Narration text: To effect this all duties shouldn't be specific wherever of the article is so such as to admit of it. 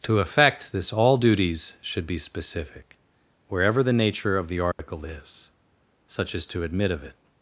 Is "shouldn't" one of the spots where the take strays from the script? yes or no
yes